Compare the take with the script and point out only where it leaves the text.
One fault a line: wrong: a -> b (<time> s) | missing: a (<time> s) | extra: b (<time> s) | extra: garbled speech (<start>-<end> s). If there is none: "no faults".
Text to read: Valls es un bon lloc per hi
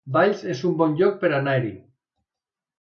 extra: anar (1.4 s)